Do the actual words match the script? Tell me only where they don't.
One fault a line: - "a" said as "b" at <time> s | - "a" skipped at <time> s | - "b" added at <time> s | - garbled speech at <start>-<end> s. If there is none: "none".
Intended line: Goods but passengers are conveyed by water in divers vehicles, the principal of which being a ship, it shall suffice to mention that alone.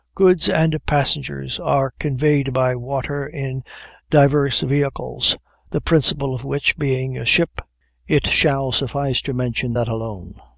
- "but" said as "and" at 0.5 s